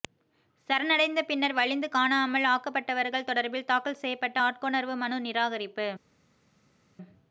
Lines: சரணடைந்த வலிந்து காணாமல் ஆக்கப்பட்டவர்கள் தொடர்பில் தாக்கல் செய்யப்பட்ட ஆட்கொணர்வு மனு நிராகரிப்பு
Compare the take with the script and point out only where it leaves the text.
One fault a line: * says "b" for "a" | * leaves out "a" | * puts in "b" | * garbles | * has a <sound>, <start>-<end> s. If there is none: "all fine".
* puts in "பின்னர்"